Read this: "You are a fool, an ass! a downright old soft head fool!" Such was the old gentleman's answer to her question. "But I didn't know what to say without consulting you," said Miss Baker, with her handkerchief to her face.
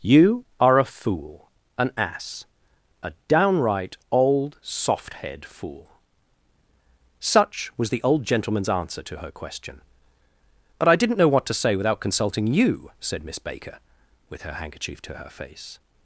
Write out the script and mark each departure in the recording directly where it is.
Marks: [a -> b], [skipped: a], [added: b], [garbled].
"You are a fool, an ass! a downright old soft head fool!" Such was the old gentleman's answer to her question. "But I didn't know what to say without consulting you," said Miss Baker, with her handkerchief to her face.